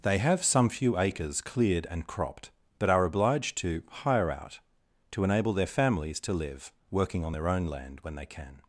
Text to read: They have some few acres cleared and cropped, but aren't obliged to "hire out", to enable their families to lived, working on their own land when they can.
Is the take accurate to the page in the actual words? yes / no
no